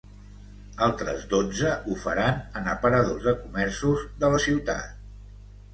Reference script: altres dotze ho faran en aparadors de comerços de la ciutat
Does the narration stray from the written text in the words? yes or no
no